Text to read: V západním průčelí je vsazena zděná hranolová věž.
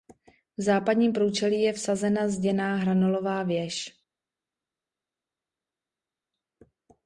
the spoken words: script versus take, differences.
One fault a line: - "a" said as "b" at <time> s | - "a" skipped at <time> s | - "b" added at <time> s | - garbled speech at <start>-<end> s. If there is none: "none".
none